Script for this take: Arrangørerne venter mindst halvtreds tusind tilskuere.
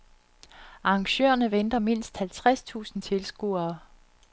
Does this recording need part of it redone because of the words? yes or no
no